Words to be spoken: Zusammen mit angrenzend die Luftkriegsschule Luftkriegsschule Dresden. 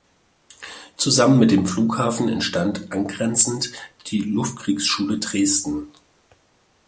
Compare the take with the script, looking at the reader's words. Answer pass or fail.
fail